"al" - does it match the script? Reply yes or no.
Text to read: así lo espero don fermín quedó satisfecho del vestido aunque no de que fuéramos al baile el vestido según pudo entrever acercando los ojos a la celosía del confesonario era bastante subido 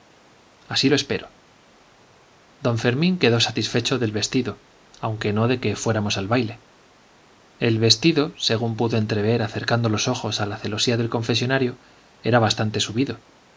yes